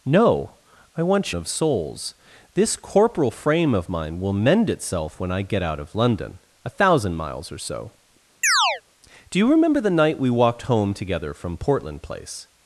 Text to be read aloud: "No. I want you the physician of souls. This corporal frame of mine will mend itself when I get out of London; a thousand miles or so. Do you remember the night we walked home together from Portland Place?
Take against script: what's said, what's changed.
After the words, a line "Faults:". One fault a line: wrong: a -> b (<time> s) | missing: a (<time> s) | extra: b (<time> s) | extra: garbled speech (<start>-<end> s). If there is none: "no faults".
"No. I want of souls. This corporal frame of mine will mend itself when I get out of London; a thousand miles or so. Do you remember the night we walked home together from Portland Place?
Faults:
missing: you the physician (1.3 s)